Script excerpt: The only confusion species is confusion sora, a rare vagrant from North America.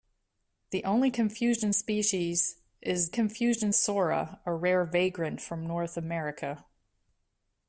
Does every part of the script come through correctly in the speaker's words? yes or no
yes